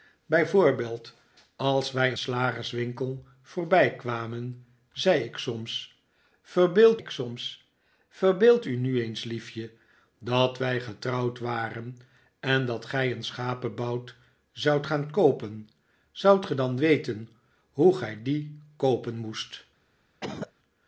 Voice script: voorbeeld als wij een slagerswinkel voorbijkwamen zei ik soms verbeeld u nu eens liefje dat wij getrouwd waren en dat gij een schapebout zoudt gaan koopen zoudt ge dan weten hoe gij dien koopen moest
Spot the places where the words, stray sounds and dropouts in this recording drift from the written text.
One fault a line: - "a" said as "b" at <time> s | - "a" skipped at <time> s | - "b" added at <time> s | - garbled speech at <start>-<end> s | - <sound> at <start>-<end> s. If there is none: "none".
- "een" skipped at 2.1 s
- "ik soms verbeeld" added at 7.0 s
- cough at 20.2-20.5 s